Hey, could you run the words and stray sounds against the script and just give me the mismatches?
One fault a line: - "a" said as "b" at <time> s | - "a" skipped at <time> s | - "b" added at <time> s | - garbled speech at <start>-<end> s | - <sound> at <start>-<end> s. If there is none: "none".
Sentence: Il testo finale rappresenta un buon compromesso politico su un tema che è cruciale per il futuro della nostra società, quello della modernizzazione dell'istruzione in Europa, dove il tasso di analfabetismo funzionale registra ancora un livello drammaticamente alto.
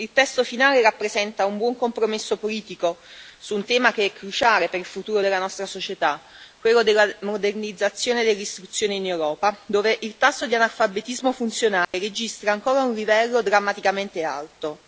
- dropout at 11.8-11.9 s